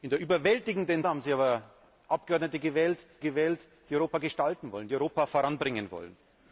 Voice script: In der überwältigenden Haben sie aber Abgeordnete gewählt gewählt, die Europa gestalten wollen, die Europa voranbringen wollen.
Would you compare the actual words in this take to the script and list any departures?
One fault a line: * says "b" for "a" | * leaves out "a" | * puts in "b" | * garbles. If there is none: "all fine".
all fine